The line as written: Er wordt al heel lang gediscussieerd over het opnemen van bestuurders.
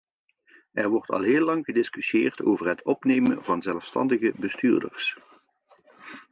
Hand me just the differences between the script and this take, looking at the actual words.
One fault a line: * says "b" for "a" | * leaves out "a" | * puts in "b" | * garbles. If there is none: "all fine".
* puts in "zelfstandige"